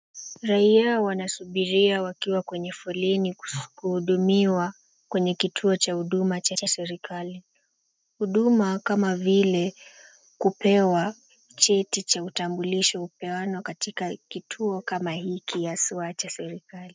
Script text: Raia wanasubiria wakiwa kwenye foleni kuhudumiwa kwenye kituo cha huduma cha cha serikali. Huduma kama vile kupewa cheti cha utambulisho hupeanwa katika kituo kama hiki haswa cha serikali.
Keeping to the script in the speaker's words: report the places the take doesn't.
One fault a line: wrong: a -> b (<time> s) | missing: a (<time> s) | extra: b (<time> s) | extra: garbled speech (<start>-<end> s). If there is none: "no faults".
no faults